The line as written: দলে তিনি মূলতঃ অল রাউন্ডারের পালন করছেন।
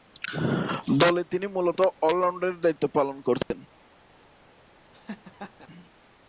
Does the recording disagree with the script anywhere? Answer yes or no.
yes